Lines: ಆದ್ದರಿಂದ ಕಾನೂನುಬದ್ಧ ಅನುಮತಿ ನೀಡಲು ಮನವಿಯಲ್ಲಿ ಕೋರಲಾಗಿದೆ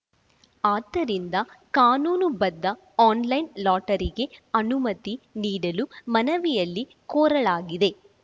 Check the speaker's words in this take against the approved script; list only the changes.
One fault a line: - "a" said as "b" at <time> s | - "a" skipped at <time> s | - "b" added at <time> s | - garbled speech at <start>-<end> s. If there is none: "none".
- "ಆನ್‌ಲೈನ್ ಲಾಟರಿಗೆ" added at 3.0 s